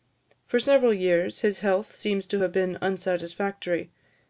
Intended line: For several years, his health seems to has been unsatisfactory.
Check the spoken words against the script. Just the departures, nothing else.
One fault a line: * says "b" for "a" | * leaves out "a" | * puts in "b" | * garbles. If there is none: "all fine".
* says "have" for "has"